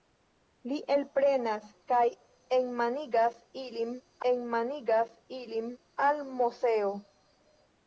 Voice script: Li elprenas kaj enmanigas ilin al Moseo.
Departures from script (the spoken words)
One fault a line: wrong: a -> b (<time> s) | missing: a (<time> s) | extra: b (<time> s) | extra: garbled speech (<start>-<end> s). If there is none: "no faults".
extra: enmanigas ilin (4.3 s)